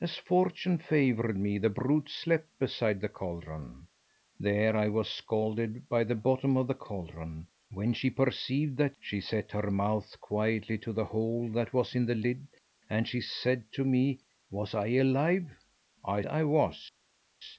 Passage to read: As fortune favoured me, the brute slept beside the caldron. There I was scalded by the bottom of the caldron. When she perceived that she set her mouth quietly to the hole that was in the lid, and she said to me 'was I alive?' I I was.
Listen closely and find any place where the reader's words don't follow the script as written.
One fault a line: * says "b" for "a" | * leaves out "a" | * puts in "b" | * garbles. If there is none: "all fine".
all fine